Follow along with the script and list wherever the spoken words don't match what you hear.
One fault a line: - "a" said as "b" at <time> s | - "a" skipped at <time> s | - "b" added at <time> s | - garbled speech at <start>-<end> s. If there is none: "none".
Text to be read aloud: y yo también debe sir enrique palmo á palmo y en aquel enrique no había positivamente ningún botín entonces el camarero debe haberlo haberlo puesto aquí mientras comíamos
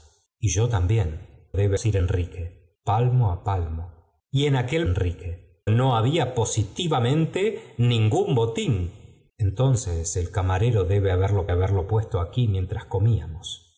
none